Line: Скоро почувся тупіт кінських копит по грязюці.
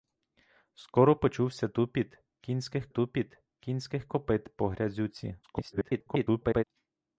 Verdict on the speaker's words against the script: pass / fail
fail